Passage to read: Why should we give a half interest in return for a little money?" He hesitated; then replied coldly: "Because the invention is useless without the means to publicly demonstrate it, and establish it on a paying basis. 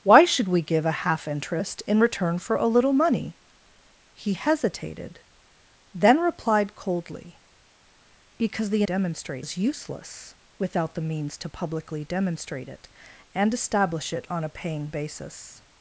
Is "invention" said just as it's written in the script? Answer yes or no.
no